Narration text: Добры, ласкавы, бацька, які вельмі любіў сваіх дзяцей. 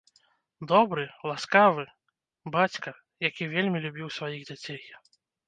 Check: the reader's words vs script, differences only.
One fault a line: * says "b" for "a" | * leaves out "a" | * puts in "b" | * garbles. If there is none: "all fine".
all fine